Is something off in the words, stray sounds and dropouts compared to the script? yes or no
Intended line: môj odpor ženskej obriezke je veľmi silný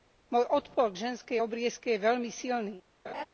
yes